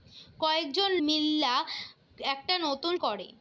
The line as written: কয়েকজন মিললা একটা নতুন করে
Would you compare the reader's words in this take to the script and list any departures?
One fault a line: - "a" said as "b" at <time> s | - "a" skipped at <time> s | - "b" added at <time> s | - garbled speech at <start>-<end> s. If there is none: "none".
none